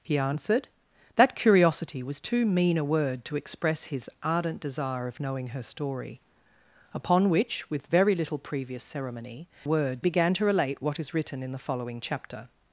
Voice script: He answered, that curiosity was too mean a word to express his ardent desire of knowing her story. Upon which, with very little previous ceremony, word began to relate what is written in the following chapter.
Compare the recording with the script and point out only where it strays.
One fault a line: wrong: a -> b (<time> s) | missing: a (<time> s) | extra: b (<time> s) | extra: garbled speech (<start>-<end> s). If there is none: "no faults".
no faults